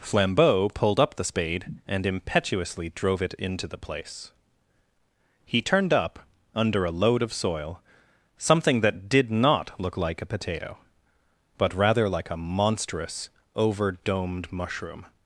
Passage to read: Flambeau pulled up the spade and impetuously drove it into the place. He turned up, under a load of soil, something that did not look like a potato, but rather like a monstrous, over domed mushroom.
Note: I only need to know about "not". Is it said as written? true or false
true